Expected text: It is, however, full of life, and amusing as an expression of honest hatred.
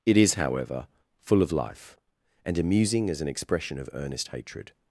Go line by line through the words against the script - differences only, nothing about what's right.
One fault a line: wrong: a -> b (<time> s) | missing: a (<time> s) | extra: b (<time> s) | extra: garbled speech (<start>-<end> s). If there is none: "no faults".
wrong: honest -> earnest (3.9 s)